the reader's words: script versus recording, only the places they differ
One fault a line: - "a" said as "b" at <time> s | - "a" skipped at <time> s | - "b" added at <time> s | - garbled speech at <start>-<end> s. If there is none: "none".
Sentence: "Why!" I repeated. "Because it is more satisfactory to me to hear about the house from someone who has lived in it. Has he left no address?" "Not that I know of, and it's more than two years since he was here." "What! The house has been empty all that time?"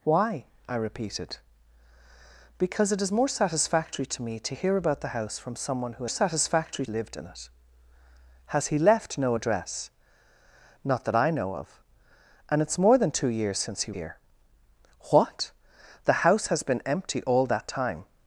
- "has" said as "satisfactory" at 6.1 s
- "was" skipped at 13.9 s